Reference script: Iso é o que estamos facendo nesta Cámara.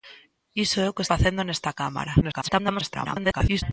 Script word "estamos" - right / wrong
wrong